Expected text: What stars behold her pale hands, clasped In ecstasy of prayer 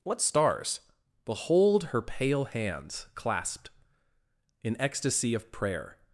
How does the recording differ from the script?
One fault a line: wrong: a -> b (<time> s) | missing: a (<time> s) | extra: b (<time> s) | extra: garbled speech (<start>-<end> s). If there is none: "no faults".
no faults